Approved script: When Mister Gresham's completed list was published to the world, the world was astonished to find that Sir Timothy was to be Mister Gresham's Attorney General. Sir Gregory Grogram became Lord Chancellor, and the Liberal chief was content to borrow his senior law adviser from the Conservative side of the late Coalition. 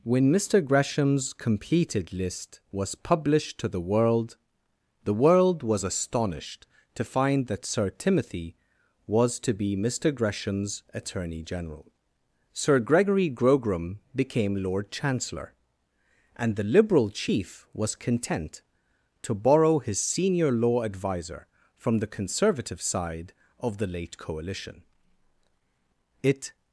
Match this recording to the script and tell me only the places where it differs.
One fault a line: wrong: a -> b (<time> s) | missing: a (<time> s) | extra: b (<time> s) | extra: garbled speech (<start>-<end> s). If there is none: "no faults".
extra: It (26.2 s)